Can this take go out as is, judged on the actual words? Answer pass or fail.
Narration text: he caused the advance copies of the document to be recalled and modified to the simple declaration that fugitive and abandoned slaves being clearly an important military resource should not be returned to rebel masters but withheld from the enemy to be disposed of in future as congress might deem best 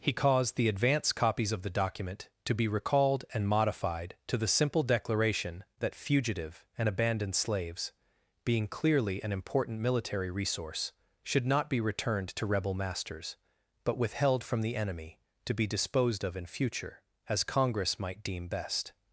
pass